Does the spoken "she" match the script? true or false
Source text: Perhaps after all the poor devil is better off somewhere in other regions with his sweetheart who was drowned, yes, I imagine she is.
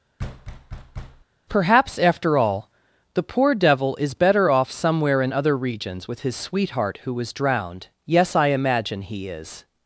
false